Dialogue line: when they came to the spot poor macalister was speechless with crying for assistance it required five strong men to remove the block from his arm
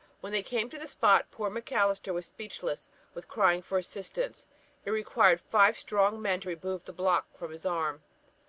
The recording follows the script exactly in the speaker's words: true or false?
true